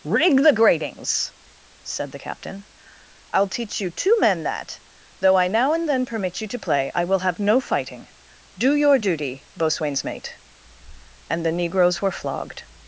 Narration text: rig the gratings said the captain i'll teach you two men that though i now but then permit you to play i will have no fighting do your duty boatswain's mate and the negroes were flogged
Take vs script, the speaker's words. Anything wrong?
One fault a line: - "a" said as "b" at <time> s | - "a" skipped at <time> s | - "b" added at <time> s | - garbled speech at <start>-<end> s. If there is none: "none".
- "but" said as "and" at 5.7 s